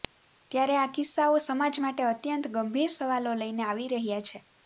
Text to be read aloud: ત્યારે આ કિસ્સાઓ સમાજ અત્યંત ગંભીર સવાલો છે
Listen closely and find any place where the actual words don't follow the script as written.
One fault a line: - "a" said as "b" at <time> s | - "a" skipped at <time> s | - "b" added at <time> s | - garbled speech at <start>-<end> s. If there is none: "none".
- "માટે" added at 1.8 s
- "લઈને આવી રહ્યા" added at 3.4 s